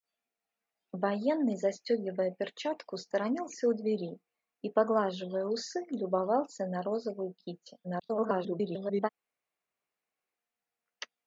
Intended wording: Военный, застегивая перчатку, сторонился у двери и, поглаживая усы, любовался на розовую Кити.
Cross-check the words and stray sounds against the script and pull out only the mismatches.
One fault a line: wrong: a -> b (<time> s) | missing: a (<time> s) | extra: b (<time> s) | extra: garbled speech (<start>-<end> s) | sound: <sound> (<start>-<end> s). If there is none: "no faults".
extra: garbled speech (7.8-9.1 s)